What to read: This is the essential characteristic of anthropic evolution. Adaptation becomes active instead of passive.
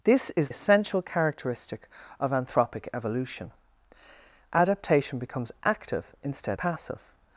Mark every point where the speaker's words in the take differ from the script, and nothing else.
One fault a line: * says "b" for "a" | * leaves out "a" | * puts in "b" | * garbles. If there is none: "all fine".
* leaves out "the"
* leaves out "of"